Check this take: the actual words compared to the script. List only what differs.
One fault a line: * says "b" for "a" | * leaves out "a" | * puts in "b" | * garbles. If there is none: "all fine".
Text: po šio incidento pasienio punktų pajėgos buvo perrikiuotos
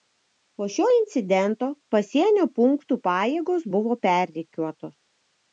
all fine